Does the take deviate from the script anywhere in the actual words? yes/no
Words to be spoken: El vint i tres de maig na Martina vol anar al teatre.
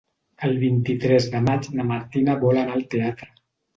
no